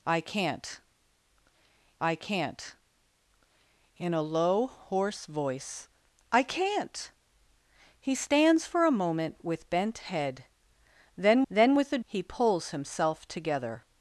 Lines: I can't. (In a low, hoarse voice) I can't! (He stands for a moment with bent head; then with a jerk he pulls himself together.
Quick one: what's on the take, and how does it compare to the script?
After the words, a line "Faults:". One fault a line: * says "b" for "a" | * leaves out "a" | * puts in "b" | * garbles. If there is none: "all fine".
I can't I can't. (In a low, hoarse voice) I can't! (He stands for a moment with bent head; then then with a he pulls himself together.
Faults:
* puts in "I can't"
* puts in "then"
* leaves out "jerk"